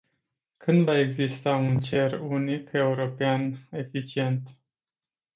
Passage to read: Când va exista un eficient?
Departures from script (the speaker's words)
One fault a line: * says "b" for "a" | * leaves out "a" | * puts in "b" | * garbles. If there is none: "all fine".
* puts in "cer unic european"